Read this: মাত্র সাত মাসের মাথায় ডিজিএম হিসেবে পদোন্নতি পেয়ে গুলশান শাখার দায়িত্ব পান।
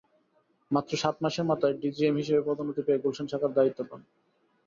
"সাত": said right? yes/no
yes